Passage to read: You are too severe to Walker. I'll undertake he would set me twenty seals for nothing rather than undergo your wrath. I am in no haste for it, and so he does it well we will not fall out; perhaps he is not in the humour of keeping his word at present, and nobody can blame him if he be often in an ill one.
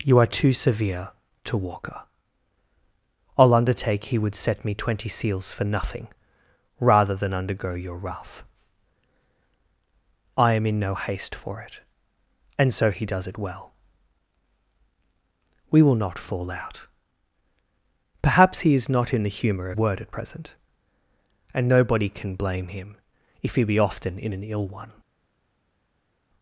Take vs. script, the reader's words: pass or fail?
fail